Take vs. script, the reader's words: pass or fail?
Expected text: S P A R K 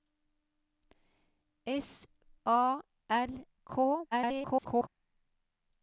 fail